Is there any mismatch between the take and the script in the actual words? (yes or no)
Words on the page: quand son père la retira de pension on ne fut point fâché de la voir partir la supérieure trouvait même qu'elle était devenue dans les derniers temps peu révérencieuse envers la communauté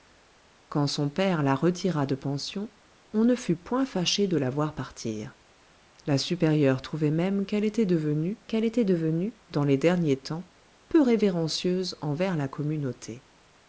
yes